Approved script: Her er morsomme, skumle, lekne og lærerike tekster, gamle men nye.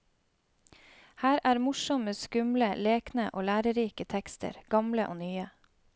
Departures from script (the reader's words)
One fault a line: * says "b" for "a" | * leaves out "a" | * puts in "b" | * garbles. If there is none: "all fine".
* says "og" for "men"